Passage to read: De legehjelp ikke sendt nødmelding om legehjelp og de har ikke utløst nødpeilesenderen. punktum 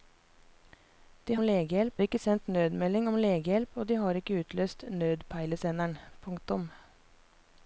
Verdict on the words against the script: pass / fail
pass